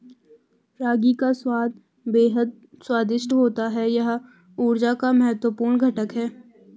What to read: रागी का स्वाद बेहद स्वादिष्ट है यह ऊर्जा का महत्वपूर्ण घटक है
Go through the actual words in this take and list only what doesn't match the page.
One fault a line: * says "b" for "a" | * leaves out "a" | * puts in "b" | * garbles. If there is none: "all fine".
* puts in "होता"